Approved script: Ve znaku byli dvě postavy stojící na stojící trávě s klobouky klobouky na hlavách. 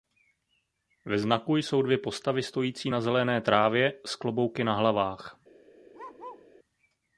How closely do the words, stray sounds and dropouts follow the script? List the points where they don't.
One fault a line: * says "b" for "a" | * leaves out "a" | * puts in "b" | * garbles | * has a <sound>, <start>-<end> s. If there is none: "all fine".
* says "jsou" for "byli"
* says "zelené" for "stojící"
* leaves out "klobouky"
* has a bark, 5.9-6.5 s